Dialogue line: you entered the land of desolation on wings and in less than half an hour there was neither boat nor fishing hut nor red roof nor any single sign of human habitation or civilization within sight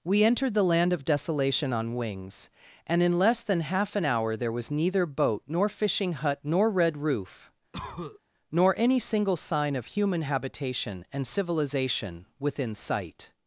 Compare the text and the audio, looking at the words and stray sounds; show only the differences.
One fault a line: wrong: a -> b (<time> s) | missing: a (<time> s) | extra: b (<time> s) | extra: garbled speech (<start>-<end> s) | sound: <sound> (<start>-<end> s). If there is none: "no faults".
wrong: you -> we (0.0 s)
sound: cough (7.7-8.2 s)
wrong: or -> and (11.1 s)